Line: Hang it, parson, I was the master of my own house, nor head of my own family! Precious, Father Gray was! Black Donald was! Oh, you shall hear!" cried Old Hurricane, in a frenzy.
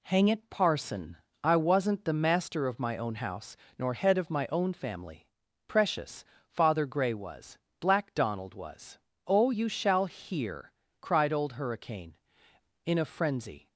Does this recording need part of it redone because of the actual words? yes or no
yes